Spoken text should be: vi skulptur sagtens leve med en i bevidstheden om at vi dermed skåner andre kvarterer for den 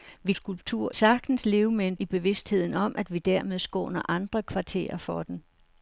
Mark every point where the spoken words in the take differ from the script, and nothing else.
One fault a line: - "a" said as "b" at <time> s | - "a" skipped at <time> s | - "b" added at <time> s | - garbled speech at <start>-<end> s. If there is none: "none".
none